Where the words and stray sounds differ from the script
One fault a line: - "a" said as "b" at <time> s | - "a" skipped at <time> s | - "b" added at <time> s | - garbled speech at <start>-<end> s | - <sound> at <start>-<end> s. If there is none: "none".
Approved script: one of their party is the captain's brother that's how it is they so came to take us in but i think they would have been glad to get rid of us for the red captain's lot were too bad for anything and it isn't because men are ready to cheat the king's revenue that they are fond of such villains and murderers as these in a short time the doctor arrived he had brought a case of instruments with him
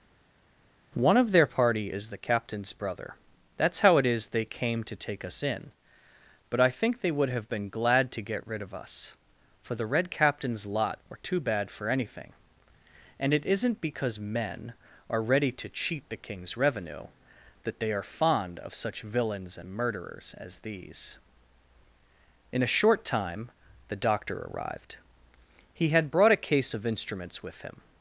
- "so" skipped at 4.5 s